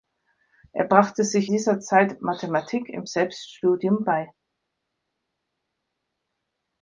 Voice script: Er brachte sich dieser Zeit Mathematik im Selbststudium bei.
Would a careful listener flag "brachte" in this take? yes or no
no